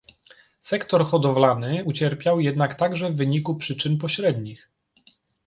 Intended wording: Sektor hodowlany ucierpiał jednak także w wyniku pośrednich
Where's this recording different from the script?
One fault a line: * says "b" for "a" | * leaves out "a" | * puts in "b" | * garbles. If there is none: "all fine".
* puts in "przyczyn"